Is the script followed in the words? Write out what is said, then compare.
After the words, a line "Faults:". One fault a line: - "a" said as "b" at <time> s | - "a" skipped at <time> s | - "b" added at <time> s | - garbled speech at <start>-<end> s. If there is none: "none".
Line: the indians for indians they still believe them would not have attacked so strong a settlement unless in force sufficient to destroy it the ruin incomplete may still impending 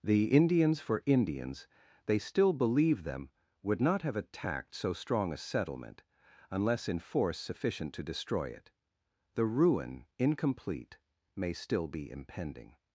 the indians for indians they still believe them would not have attacked so strong a settlement unless in force sufficient to destroy it the ruin incomplete may still be impending
Faults:
- "be" added at 11.9 s